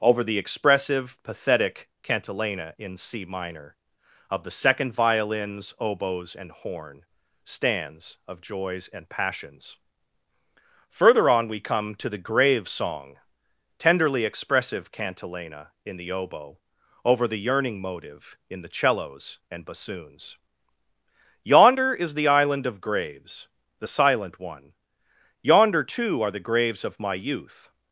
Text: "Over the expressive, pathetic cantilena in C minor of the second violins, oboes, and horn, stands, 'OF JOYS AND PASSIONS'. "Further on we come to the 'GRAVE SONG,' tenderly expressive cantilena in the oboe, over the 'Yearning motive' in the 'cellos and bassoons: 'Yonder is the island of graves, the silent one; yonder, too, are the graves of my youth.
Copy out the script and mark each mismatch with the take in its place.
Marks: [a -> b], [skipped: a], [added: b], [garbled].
"Over the expressive, pathetic cantilena in C minor of the second violins, oboes, and horn, stands, 'OF JOYS AND PASSIONS'. "Further on we come to the 'GRAVE SONG,' tenderly expressive cantilena in the oboe, over the 'Yearning motive' in the 'cellos and bassoons: 'Yonder is the island of graves, the silent one; yonder, too, are the graves of my youth.